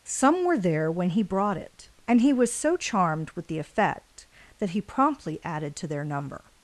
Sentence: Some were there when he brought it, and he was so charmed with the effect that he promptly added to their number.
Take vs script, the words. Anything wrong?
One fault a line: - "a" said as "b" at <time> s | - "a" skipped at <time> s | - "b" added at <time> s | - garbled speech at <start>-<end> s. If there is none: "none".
none